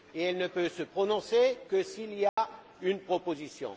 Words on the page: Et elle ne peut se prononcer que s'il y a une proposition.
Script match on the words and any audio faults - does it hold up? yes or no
no